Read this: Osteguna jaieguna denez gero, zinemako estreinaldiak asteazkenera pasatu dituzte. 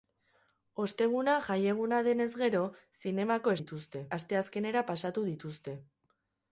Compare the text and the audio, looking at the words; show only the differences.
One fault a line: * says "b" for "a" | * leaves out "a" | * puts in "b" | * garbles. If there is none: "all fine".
* says "dituzte" for "estreinaldiak"